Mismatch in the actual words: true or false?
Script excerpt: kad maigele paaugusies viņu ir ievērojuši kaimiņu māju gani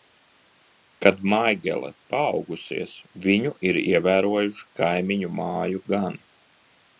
false